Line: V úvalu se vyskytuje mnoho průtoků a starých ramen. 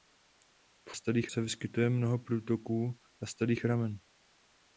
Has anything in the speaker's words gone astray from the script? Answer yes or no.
yes